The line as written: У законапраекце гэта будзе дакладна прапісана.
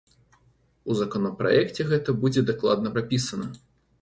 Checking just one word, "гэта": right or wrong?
right